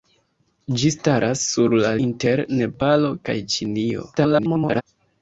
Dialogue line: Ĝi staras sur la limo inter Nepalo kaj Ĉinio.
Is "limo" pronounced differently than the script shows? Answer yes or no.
yes